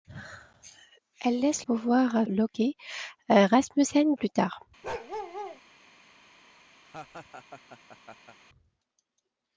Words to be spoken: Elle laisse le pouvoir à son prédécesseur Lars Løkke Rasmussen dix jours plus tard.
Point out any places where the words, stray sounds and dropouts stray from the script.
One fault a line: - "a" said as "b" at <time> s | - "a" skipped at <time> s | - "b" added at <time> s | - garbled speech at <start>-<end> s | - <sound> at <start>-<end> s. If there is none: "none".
- "le" skipped at 1.6 s
- "son prédécesseur Lars" skipped at 2.3 s
- "dix jours" skipped at 4.1 s
- bark at 4.8-5.6 s
- laugh at 6.8-8.4 s